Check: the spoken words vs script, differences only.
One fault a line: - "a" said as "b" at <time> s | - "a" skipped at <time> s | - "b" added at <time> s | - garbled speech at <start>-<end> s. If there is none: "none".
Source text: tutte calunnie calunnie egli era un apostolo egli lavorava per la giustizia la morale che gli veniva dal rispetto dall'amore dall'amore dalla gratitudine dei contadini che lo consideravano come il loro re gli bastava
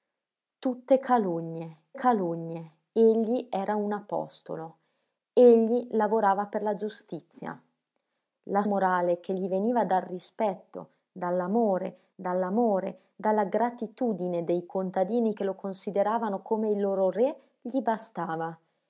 none